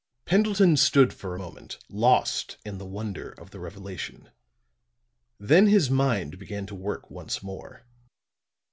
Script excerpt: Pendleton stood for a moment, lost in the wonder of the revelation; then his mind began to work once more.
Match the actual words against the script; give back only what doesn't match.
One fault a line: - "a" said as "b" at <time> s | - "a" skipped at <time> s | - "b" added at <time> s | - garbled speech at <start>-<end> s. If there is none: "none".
none